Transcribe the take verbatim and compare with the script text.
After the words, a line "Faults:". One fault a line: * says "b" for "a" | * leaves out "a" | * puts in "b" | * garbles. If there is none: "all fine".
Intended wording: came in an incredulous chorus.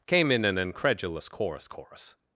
came in an incredulous chorus chorus.
Faults:
* puts in "chorus"